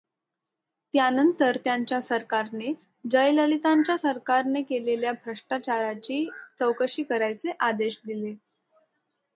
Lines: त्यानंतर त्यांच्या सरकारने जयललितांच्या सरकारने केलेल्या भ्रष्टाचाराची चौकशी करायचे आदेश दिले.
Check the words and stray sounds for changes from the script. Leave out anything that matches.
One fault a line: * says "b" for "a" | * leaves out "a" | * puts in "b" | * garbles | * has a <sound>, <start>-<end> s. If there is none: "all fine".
all fine